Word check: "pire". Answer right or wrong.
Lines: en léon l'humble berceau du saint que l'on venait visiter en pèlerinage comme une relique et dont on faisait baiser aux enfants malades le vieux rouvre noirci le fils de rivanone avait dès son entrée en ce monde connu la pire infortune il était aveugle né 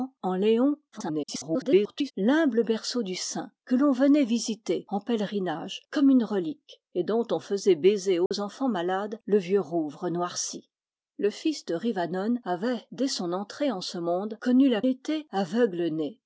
wrong